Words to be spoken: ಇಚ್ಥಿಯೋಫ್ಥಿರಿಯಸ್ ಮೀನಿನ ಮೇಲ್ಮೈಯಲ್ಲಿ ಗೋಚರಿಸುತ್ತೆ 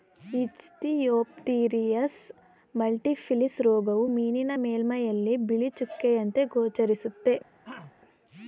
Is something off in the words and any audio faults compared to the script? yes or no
yes